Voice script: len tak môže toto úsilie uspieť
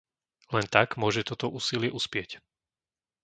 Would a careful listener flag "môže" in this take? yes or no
no